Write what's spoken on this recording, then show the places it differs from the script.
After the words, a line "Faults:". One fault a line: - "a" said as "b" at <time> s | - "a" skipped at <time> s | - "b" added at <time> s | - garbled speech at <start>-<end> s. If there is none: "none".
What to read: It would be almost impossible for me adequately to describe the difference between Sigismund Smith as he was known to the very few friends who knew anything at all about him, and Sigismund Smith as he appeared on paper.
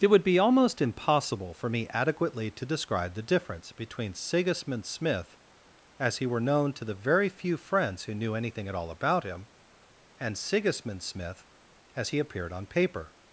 It would be almost impossible for me adequately to describe the difference between Sigismund Smith as he were known to the very few friends who knew anything at all about him, and Sigismund Smith as he appeared on paper.
Faults:
- "was" said as "were" at 6.2 s